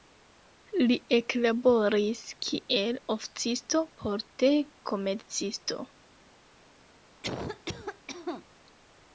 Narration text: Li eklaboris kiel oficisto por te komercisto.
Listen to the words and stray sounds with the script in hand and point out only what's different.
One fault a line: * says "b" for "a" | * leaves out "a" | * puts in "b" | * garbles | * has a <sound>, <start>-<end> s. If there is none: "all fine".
* has a cough, 7.2-8.5 s